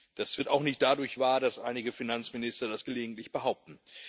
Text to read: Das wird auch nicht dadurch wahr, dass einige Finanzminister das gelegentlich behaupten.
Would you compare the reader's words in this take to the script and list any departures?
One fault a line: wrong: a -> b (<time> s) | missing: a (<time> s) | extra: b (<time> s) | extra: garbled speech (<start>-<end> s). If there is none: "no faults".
no faults